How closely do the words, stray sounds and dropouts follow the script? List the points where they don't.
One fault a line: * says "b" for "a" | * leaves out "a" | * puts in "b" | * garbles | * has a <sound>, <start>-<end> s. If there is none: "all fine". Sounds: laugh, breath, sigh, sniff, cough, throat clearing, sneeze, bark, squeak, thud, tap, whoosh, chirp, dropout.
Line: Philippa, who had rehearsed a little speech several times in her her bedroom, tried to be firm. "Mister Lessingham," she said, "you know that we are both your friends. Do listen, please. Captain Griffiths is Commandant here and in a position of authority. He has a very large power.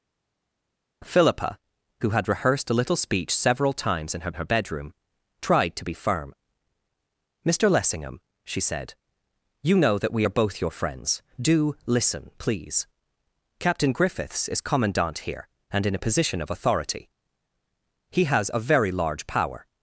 all fine